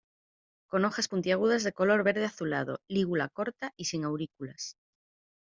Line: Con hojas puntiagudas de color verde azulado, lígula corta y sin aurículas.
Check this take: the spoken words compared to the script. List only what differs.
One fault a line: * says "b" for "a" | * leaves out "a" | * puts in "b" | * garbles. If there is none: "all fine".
all fine